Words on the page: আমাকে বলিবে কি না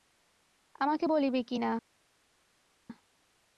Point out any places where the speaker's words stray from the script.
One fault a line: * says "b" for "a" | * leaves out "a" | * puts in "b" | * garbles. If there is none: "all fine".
all fine